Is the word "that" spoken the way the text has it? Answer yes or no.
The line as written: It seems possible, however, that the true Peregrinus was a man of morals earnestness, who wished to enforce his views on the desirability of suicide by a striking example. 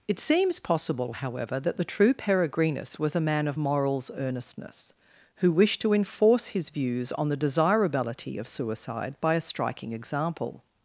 yes